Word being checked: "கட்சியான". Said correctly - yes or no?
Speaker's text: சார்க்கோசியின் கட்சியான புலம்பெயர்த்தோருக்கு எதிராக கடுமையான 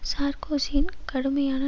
no